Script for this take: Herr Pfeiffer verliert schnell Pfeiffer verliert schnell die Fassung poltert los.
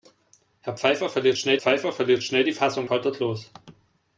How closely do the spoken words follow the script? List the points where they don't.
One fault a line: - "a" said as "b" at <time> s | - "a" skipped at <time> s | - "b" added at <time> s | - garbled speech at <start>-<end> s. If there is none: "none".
none